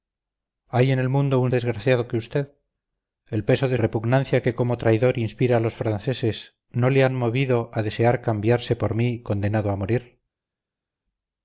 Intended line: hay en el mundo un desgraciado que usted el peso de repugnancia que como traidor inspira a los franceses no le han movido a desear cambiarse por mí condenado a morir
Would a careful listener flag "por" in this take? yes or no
no